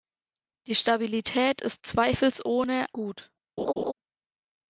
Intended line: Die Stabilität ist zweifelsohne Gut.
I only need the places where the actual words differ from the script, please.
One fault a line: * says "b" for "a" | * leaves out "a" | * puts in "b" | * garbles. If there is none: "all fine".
all fine